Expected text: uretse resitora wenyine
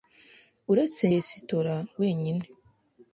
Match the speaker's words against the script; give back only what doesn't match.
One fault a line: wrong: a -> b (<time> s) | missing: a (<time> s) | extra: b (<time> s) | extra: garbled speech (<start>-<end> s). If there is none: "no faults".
no faults